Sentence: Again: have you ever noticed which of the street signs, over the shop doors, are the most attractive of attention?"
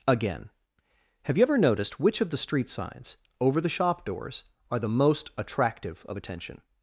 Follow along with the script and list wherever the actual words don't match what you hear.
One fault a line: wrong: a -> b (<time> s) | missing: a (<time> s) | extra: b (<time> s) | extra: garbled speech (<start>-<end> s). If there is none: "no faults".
no faults